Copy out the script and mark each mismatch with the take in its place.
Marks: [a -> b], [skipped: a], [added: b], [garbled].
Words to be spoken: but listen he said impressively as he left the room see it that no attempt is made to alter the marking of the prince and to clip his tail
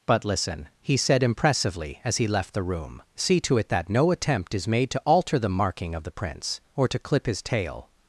but listen he said impressively as he left the room see [added: to] it that no attempt is made to alter the marking of the prince [and -> or] to clip his tail